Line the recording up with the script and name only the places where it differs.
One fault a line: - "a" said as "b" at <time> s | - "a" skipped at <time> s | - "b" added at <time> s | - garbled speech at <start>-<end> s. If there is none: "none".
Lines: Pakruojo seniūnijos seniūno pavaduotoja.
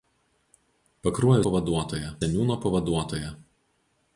- "seniūnijos" said as "pavaduotoja" at 1.4 s